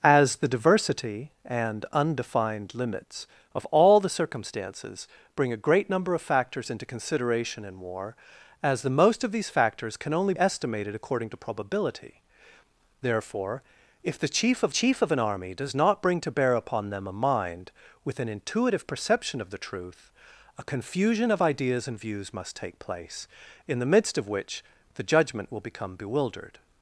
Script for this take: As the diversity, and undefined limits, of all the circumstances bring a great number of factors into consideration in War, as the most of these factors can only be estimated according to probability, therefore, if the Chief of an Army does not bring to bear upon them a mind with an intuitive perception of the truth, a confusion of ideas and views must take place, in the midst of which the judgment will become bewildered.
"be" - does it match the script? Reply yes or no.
no